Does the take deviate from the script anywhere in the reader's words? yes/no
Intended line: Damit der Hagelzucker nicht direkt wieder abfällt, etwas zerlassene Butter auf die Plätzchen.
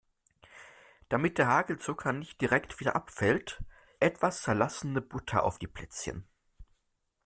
no